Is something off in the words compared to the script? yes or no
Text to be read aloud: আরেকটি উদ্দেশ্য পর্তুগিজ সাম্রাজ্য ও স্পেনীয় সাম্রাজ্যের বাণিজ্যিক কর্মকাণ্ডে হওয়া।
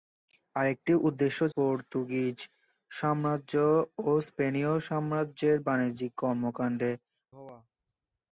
no